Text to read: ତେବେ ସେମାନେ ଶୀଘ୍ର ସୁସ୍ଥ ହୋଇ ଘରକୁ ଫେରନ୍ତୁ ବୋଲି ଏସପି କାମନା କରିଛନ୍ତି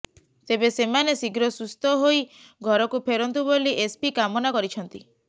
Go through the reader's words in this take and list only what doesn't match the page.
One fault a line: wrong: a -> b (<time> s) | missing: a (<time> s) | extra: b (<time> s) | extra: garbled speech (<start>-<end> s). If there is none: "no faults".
no faults